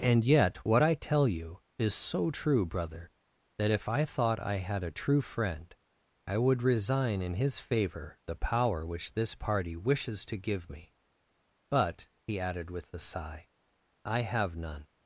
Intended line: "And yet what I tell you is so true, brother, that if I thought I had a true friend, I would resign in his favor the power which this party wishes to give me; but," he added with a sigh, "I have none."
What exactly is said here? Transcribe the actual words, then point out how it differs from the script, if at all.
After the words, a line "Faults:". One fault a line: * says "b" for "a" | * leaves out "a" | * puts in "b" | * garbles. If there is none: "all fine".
"And yet what I tell you is so true, brother, that if I thought I had a true friend, I would resign in his favor the power which this party wishes to give me; but," he added with a sigh, "I have none."
Faults:
all fine